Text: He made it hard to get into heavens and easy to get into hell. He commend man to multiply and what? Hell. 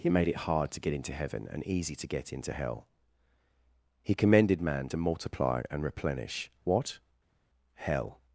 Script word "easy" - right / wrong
right